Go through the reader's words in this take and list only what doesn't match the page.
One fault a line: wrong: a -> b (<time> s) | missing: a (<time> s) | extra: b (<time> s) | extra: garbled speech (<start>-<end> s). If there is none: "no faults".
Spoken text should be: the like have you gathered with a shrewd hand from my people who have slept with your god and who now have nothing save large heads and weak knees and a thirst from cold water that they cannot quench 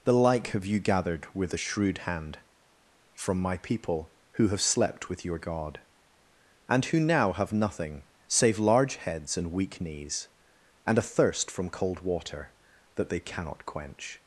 no faults